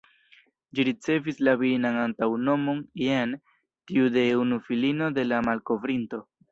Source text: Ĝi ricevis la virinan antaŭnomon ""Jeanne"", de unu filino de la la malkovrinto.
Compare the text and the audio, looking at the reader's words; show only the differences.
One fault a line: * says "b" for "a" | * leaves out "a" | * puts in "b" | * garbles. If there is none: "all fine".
* puts in "tiu"
* leaves out "la"